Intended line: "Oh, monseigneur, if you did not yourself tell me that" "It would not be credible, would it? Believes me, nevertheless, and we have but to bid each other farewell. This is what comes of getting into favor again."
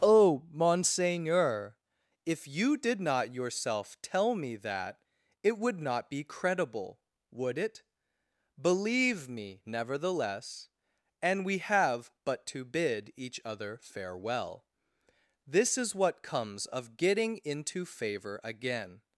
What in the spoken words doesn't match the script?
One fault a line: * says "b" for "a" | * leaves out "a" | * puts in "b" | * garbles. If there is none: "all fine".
* says "Believe" for "Believes"